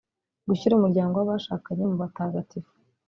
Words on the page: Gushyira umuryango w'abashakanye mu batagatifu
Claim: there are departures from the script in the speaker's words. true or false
false